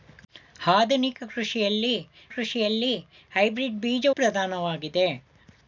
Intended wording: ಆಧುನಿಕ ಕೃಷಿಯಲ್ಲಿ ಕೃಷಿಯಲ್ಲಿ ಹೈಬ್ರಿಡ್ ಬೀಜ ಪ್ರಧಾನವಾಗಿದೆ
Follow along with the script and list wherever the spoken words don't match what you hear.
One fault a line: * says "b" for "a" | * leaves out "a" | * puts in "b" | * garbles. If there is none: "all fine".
all fine